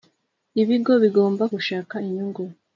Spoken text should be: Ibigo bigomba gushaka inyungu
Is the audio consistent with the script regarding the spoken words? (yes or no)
yes